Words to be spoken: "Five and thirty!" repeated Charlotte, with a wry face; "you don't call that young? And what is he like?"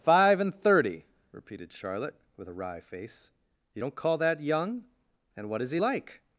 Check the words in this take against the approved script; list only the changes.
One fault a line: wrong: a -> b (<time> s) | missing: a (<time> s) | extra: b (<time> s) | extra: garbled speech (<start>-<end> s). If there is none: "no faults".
no faults